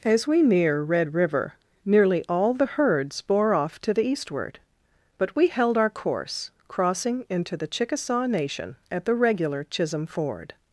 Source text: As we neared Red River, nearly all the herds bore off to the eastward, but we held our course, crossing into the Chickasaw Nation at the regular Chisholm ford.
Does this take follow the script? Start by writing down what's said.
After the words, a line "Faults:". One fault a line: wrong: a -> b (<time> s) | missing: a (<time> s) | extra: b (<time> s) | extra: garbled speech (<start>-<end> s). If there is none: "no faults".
As we near Red River, nearly all the herds bore off to the eastward, but we held our course, crossing into the Chickasaw Nation at the regular Chisholm ford.
Faults:
wrong: neared -> near (0.4 s)